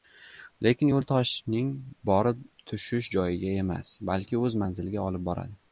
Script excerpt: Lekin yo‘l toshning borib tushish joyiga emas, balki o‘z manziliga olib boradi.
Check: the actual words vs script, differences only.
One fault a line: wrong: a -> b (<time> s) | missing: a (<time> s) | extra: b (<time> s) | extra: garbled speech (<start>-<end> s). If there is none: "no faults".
no faults